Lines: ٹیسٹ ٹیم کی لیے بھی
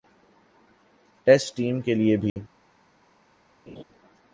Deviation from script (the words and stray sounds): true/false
true